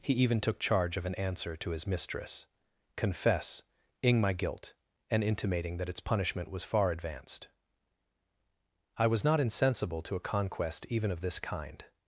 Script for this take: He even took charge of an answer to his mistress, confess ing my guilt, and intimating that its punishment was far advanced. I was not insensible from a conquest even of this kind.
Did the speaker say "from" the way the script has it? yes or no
no